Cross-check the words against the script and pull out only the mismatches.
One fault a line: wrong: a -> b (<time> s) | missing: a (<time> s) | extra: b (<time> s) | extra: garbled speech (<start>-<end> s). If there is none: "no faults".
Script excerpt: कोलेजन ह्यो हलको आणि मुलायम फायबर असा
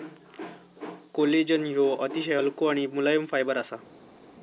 extra: अतिशय (1.9 s)